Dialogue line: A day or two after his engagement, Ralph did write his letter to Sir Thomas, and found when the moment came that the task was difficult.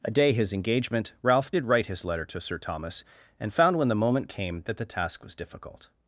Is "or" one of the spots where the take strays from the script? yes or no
yes